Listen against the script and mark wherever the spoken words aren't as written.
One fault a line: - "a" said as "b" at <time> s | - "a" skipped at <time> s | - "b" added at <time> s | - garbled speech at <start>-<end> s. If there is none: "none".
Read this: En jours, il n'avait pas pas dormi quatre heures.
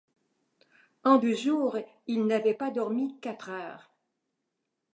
- "deux" added at 1.2 s
- "pas" skipped at 2.7 s